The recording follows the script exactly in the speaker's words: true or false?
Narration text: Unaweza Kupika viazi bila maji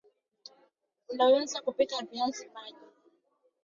false